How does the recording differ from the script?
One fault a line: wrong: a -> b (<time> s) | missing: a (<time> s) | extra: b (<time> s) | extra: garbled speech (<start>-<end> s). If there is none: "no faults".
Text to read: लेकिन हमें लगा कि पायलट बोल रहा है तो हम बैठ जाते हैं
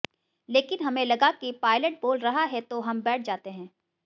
no faults